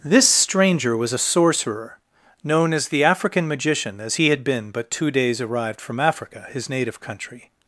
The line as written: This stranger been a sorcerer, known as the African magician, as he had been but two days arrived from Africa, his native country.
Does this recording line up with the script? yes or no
no